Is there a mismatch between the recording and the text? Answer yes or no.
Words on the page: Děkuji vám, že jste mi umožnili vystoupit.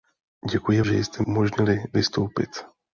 yes